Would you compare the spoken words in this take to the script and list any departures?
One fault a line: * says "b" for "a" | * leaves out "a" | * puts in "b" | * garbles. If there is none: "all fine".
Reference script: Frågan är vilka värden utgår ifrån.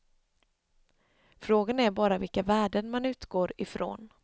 * puts in "bara"
* puts in "man"